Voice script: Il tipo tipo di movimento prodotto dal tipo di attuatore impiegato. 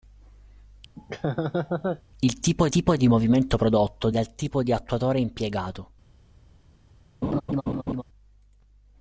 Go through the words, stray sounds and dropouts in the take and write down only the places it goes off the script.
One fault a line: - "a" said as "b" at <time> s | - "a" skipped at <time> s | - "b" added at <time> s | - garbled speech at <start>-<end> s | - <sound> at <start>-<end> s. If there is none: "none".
- laugh at 1.0-2.0 s
- laugh at 7.2-8.0 s